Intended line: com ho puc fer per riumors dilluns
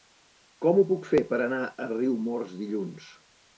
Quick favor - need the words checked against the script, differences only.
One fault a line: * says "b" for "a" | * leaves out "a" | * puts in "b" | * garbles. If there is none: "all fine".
* puts in "anar a"